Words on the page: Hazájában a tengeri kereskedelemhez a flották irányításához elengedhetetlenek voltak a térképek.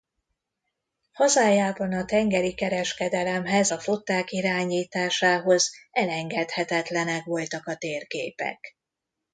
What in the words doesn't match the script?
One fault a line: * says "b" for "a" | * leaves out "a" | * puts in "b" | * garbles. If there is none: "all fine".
all fine